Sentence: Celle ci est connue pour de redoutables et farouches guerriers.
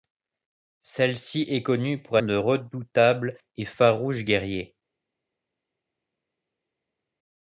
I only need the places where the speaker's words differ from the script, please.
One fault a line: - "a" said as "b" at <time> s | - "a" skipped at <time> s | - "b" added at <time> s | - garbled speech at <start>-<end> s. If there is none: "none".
none